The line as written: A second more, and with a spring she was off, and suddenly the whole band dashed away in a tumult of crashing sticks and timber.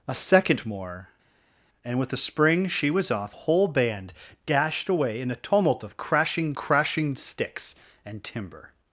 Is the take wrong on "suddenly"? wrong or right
wrong